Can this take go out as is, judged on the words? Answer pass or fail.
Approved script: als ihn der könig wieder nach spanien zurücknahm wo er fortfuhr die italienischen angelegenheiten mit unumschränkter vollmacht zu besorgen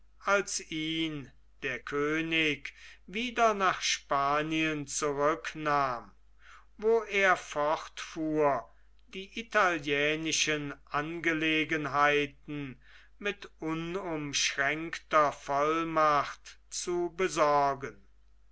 pass